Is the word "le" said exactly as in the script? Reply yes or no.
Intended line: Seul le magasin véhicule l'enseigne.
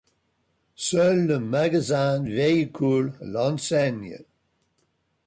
yes